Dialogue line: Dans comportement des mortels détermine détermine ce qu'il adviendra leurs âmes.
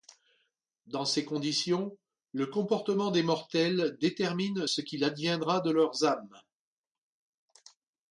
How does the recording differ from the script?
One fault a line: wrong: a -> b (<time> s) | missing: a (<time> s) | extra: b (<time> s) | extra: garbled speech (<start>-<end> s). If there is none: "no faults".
extra: ces conditions le (1.1 s)
missing: détermine (4.7 s)
extra: de (5.6 s)